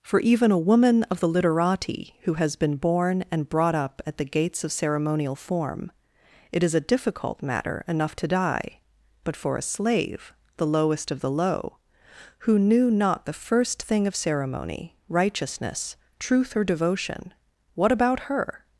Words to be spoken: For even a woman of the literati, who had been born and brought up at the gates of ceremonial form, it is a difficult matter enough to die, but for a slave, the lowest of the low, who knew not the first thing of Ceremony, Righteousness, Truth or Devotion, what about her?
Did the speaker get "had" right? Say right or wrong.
wrong